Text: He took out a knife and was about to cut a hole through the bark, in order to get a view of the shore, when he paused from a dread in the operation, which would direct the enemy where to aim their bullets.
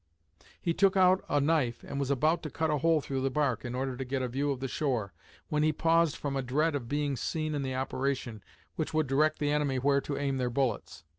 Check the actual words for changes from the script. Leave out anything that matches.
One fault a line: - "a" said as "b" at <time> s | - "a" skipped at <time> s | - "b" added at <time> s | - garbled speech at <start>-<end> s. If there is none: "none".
- "of being seen" added at 6.7 s